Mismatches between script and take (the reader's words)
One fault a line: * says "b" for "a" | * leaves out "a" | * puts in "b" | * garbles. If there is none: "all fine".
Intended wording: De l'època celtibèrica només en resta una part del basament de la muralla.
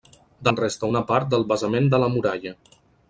* leaves out "l'època celtibèrica només"